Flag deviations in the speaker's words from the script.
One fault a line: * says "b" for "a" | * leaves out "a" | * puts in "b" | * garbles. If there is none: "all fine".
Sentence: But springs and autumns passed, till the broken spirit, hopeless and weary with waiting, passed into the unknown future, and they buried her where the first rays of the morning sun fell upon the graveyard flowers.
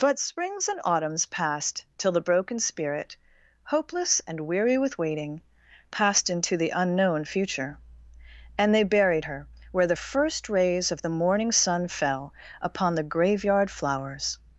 all fine